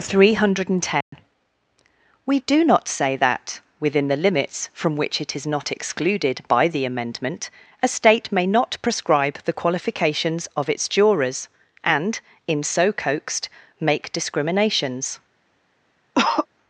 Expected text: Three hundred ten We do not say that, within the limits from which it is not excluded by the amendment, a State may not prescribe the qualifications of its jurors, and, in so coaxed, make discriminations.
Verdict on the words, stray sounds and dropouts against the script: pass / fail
fail